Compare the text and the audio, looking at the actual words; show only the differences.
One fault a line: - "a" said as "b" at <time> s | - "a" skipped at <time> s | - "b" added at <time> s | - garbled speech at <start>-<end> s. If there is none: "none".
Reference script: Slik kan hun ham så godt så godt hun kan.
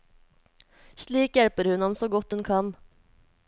- "kan" said as "hjelper" at 1.4 s
- "så godt" skipped at 2.3 s